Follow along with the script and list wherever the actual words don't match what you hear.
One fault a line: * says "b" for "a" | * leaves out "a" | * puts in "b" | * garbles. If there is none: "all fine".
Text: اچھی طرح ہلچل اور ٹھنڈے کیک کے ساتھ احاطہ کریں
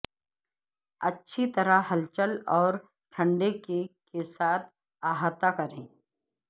all fine